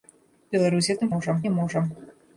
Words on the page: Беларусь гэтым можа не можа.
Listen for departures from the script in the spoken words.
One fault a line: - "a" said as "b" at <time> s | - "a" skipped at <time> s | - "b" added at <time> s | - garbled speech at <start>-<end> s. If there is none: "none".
none